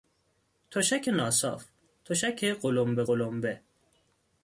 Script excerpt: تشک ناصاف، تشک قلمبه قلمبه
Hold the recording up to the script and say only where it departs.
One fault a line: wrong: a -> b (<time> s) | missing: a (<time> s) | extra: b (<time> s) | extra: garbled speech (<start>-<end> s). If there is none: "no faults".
no faults